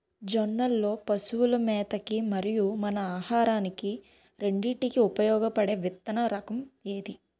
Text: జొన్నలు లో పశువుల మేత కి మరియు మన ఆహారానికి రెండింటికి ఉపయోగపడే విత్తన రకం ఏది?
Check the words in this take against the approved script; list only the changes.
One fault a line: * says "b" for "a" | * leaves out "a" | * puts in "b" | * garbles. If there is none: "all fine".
all fine